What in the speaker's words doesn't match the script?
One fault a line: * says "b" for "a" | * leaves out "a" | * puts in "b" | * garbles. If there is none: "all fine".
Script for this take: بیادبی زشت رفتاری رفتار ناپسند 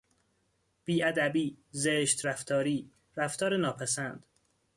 all fine